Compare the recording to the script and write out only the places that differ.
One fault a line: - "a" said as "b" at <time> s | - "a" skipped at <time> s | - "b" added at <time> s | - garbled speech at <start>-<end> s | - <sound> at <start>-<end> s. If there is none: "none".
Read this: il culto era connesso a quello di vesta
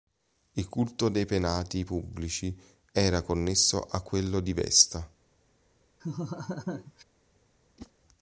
- "dei penati pubblici" added at 1.1 s
- laugh at 6.0-7.0 s
- whoosh at 7.8-7.9 s